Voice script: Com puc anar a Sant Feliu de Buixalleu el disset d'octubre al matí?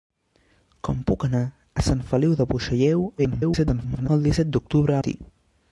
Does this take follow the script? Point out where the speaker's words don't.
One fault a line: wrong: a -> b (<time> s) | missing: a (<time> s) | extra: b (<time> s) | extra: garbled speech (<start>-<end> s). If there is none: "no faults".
extra: garbled speech (3.2-4.1 s)
missing: al (5.0 s)